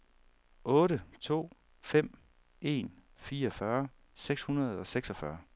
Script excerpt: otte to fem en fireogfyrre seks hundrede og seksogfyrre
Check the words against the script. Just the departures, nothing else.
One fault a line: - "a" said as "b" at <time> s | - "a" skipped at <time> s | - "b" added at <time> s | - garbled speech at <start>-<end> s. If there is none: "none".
none